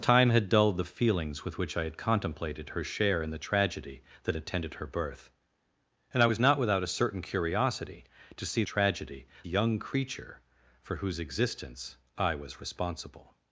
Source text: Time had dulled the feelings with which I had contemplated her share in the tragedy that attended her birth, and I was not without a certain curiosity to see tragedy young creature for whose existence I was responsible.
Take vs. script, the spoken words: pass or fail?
pass